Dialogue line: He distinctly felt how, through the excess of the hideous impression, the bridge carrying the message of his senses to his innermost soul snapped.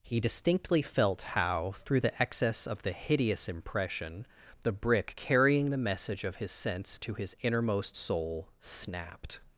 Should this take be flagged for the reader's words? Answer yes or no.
yes